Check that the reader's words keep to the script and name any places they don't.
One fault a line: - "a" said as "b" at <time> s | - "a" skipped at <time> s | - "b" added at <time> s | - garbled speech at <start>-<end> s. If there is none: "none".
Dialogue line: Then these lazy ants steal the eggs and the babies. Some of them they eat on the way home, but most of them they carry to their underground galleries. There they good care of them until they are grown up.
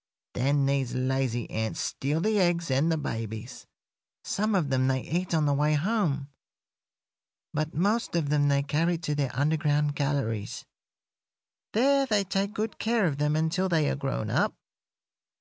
- "take" added at 12.2 s